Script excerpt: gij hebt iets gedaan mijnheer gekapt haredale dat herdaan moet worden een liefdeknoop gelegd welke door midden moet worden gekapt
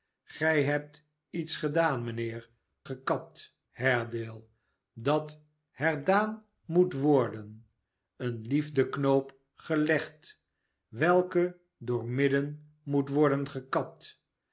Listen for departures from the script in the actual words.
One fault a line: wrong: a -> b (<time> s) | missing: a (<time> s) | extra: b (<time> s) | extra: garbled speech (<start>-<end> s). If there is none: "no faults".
no faults